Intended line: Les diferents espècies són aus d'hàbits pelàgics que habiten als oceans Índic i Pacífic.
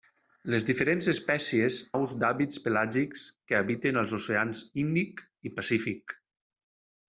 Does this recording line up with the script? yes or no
no